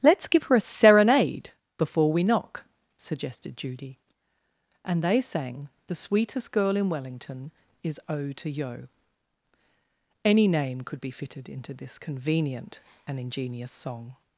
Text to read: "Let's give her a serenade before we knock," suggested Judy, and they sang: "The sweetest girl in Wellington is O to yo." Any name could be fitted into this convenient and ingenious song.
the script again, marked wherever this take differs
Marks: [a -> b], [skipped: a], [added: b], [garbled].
"Let's give her a serenade before we knock," suggested Judy, and they sang: "The sweetest girl in Wellington is O to yo." Any name could be fitted into this convenient and ingenious song.